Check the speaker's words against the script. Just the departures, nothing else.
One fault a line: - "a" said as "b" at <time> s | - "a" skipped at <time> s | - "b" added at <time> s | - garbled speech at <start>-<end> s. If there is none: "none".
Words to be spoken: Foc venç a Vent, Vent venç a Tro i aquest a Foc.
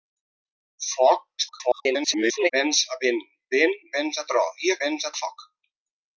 - garbled speech at 1.4-2.5 s
- "aquest" said as "venç" at 4.8 s